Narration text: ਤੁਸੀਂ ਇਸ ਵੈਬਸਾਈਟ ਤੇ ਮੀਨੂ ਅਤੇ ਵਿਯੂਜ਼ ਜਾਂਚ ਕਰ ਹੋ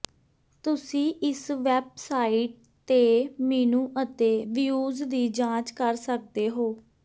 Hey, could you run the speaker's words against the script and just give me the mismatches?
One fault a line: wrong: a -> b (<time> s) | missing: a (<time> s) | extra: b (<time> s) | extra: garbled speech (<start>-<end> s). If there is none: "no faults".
extra: ਦੀ (5.0 s)
extra: ਸਕਦੇ (6.0 s)